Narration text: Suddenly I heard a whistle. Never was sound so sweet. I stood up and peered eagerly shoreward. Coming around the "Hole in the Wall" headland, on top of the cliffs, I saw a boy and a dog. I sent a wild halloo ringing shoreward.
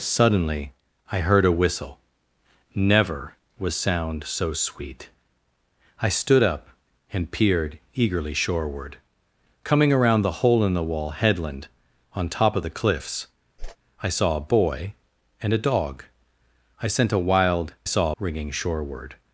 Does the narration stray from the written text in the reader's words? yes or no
yes